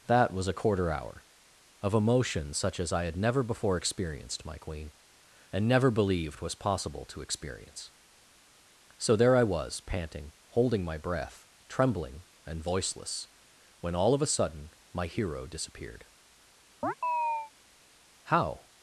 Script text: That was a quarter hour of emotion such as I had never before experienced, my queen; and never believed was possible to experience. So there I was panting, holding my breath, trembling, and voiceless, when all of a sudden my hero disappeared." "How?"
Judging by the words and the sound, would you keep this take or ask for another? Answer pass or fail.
fail